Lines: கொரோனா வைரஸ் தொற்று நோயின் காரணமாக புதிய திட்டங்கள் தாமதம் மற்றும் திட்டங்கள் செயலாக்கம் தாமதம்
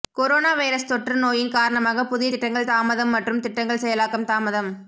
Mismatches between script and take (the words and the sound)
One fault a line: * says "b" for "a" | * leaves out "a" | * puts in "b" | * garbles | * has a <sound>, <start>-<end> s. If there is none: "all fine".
all fine